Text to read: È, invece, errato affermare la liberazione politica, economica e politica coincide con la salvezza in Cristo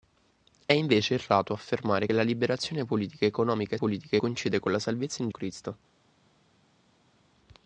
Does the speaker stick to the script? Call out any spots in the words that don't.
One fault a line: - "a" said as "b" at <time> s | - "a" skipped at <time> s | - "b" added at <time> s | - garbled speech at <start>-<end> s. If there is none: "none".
none